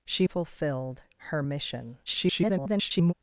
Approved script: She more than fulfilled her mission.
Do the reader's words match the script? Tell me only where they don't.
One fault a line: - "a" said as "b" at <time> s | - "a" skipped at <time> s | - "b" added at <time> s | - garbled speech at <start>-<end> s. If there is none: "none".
- "more than" skipped at 0.2 s
- garbled speech at 2.1-3.1 s